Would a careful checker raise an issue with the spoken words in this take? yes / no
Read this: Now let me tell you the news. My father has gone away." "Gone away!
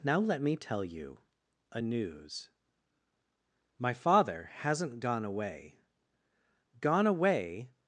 yes